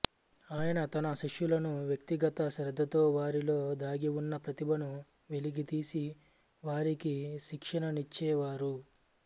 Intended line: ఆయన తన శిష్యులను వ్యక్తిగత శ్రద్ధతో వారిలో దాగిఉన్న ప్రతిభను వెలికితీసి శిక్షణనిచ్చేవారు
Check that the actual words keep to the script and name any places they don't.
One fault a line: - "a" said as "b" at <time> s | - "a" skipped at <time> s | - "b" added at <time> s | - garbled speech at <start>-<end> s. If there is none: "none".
- "వారికి" added at 6.6 s